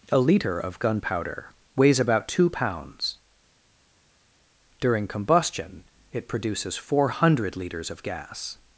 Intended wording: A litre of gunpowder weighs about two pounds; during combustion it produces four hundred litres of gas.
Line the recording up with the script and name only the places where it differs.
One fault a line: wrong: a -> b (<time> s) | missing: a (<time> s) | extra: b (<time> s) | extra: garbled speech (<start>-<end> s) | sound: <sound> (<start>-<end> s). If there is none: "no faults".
no faults